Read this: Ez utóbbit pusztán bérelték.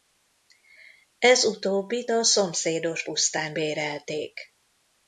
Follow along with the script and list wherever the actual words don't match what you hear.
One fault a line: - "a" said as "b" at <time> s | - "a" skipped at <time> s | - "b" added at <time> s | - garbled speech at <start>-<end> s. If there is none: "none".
- "a szomszédos" added at 2.1 s